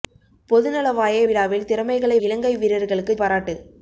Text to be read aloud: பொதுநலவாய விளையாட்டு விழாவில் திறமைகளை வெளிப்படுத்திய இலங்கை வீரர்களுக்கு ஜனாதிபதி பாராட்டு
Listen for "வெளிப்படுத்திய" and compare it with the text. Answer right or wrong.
wrong